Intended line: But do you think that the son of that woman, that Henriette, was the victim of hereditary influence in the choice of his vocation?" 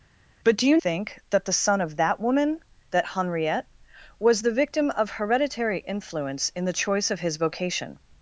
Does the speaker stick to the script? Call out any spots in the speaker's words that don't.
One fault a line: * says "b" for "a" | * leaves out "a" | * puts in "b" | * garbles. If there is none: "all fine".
all fine